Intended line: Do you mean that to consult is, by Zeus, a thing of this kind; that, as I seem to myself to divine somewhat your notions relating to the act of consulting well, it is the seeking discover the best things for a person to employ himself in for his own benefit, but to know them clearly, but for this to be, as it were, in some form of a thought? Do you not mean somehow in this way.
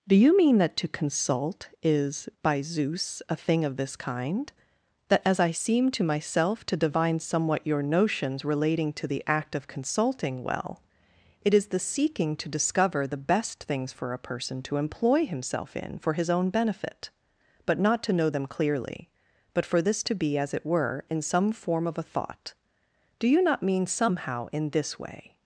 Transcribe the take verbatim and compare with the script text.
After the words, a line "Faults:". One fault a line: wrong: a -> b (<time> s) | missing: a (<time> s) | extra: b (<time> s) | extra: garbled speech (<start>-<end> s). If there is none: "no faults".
Do you mean that to consult is, by Zeus, a thing of this kind; that, as I seem to myself to divine somewhat your notions relating to the act of consulting well, it is the seeking to discover the best things for a person to employ himself in for his own benefit, but not to know them clearly, but for this to be, as it were, in some form of a thought? Do you not mean somehow in this way.
Faults:
extra: to (12.4 s)
extra: not (17.8 s)